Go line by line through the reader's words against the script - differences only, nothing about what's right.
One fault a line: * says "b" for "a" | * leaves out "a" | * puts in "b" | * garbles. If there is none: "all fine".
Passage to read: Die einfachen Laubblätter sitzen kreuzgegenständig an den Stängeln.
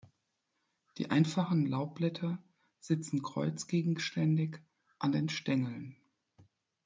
all fine